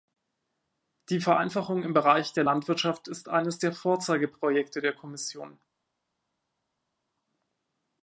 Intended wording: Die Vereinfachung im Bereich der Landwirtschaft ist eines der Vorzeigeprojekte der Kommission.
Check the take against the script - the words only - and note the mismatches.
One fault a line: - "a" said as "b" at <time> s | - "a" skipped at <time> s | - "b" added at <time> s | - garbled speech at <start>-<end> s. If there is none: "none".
none